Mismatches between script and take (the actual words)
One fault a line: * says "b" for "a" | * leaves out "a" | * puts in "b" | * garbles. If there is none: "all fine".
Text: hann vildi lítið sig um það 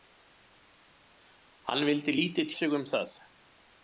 all fine